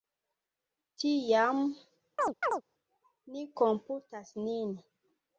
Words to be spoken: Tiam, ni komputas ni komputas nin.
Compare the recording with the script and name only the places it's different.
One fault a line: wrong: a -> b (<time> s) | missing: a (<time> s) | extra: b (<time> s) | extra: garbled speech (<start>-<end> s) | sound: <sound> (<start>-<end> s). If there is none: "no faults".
sound: chirp (2.2-2.6 s)
missing: ni komputas (4.3 s)